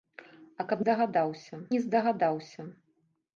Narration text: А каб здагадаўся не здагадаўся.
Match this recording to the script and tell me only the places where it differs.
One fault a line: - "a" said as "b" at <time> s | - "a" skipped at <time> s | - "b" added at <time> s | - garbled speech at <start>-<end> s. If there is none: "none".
none